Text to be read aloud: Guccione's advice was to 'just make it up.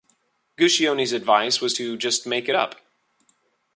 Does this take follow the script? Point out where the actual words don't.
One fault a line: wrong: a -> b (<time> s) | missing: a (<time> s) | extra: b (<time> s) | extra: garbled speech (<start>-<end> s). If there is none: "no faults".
no faults